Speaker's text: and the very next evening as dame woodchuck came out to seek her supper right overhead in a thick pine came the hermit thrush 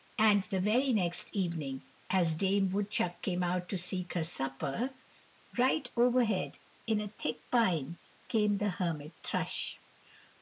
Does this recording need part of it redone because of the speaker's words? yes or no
no